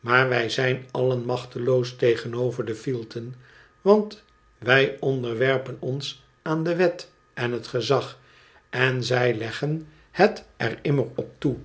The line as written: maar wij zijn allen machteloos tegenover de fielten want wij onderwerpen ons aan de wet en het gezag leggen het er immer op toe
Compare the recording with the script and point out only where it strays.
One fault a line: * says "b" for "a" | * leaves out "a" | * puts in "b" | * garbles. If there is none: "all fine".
* puts in "en zij"